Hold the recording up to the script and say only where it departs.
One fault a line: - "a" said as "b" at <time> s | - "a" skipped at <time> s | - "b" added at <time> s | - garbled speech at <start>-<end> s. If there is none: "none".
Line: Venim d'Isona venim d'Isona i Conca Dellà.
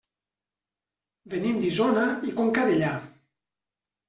- "venim d'Isona" skipped at 2.1 s